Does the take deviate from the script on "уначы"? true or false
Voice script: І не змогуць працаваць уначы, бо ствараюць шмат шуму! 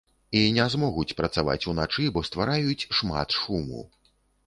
false